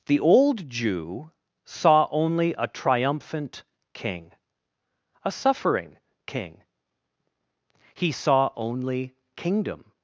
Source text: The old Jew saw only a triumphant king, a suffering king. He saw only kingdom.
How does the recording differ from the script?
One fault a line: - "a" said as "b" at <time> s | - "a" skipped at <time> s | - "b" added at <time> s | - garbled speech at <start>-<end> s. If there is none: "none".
none